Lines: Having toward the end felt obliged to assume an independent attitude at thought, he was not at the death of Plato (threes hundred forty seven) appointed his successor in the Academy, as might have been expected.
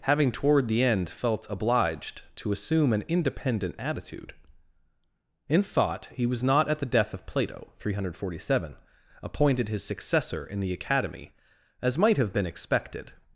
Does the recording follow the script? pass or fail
fail